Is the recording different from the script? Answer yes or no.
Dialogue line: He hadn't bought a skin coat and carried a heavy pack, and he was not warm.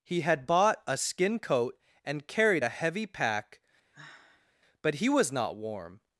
yes